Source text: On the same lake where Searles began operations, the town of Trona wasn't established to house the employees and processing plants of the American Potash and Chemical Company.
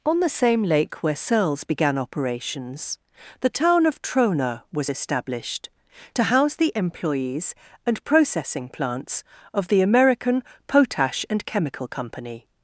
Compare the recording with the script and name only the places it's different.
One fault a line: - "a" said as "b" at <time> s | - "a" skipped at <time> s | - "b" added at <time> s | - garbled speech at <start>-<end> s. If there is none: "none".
- "wasn't" said as "was" at 4.7 s